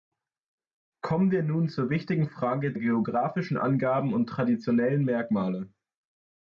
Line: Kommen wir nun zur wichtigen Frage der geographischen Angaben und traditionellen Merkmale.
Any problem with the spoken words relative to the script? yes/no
yes